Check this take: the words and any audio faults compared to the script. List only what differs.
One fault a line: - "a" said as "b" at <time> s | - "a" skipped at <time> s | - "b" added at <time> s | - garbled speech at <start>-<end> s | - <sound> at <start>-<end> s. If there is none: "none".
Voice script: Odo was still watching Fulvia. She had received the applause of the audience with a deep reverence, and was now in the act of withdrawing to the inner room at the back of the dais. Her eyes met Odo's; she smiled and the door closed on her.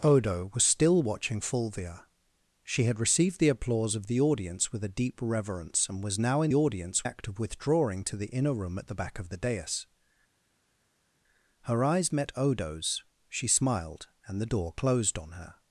- "the" said as "audience" at 6.5 s